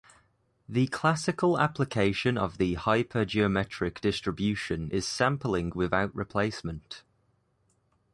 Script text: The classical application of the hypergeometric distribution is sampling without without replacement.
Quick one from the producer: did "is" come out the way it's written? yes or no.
yes